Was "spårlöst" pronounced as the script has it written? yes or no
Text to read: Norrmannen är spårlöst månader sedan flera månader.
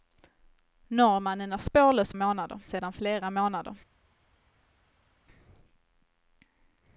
yes